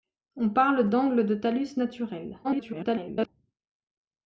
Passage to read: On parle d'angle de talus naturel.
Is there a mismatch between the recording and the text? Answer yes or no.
yes